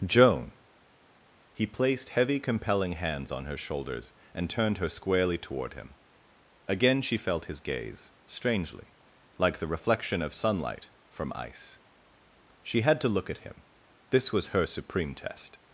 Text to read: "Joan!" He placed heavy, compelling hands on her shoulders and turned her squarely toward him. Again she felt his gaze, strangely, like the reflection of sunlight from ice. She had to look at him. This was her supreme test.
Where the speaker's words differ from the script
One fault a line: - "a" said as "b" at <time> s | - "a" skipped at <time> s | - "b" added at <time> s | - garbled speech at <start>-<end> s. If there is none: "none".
none